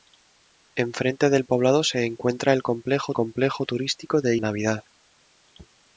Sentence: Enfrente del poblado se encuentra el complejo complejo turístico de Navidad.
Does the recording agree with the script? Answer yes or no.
yes